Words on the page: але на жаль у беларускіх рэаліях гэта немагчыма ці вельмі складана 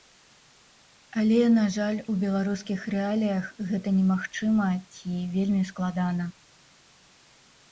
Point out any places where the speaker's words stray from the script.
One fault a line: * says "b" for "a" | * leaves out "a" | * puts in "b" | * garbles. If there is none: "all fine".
all fine